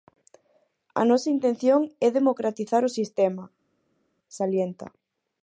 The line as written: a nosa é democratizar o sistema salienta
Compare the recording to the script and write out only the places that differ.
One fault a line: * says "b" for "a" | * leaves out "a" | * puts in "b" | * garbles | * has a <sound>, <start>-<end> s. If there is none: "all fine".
* puts in "intención"